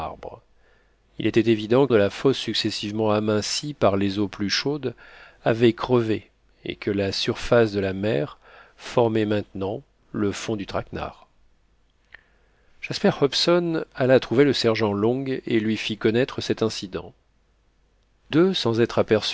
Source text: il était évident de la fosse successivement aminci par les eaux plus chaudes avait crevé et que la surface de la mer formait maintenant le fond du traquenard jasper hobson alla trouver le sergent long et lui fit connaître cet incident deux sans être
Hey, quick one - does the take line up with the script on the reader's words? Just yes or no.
yes